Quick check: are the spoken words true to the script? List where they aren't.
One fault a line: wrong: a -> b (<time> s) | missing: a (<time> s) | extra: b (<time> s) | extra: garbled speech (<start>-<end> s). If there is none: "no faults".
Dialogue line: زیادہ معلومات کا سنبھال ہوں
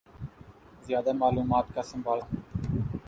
no faults